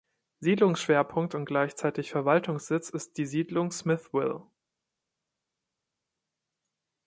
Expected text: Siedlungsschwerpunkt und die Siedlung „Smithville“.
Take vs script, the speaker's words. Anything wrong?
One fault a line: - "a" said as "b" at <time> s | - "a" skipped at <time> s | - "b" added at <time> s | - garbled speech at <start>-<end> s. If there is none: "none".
- "gleichzeitig Verwaltungssitz ist" added at 1.4 s